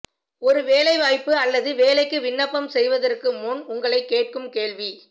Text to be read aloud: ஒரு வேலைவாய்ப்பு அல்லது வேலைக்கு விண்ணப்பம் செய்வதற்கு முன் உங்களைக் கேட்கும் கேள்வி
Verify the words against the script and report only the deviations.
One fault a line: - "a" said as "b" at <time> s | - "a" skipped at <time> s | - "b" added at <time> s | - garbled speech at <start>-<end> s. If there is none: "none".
none